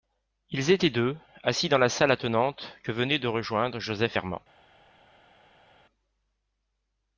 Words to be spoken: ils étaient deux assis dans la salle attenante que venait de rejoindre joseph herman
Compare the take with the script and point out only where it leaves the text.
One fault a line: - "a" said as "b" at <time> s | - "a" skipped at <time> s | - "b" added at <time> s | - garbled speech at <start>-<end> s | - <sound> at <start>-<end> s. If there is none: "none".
none